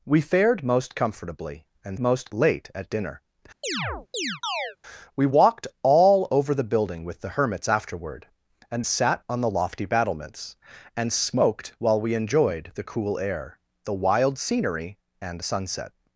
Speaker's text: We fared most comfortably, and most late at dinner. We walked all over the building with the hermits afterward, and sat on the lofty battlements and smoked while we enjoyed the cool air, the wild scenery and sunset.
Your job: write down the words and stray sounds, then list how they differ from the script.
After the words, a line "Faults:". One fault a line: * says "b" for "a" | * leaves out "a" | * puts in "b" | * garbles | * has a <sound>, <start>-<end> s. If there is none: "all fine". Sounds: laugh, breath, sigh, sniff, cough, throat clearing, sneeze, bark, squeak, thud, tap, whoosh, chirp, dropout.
We fared most comfortably, and most late at dinner. We walked all over the building with the hermits afterward, and sat on the lofty battlements and smoked while we enjoyed the cool air, the wild scenery and sunset.
Faults:
* has a chirp, 3.6-4.8 s